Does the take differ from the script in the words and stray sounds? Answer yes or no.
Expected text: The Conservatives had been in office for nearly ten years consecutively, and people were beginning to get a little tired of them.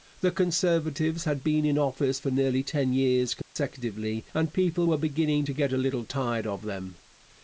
yes